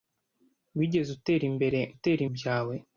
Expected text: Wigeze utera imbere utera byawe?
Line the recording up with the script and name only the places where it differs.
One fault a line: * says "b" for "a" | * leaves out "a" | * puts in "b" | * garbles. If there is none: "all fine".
all fine